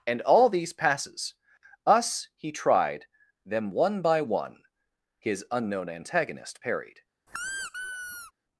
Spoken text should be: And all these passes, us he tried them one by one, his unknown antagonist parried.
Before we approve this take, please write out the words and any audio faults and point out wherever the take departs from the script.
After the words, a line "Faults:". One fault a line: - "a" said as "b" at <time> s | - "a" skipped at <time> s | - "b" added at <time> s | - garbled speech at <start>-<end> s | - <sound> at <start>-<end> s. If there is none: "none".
And all these passes, us he tried them one by one, his unknown antagonist parried.
Faults:
- squeak at 7.3-8.3 s